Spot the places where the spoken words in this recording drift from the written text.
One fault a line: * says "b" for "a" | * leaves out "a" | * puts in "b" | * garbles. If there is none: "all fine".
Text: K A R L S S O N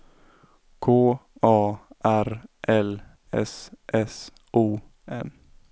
all fine